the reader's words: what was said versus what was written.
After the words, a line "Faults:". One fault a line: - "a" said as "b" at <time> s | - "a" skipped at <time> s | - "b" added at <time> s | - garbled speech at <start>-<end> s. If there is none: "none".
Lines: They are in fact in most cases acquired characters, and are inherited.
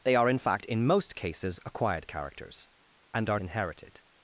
They are in fact in most cases acquired characters, and are inherited.
Faults:
none